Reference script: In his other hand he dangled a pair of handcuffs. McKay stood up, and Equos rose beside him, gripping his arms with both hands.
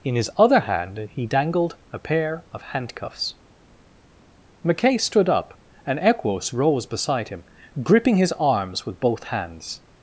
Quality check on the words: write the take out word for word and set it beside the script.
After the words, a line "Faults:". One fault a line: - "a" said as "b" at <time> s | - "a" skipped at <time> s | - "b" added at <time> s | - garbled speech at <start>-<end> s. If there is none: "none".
In his other hand he dangled a pair of handcuffs. McKay stood up, and Equos rose beside him, gripping his arms with both hands.
Faults:
none